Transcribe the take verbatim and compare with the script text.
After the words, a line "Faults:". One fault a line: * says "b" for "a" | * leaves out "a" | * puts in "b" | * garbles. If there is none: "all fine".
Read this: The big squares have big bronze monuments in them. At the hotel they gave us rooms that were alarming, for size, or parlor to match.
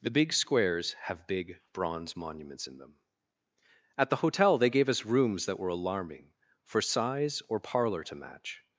The big squares have big bronze monuments in them. At the hotel they gave us rooms that were alarming, for size, or parlor to match.
Faults:
all fine